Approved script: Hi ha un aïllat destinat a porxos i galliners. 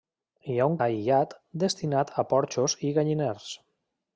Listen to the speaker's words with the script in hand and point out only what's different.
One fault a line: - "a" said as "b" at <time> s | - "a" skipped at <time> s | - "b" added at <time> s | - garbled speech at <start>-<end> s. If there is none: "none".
none